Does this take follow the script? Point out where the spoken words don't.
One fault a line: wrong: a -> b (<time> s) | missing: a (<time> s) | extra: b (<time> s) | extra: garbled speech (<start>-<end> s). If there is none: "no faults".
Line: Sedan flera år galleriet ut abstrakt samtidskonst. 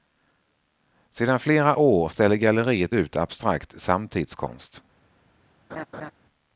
extra: ställer (2.1 s)